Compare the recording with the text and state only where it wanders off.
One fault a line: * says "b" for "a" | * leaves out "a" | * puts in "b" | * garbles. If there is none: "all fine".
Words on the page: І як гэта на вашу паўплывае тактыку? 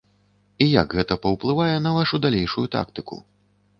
* puts in "паўплывае"
* says "далейшую" for "паўплывае"